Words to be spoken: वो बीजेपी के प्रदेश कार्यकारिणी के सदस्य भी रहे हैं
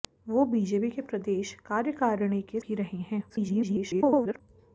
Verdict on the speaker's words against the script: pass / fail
fail